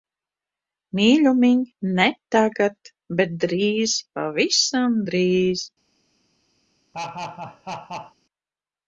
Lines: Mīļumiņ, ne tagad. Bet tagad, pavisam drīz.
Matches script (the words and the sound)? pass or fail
fail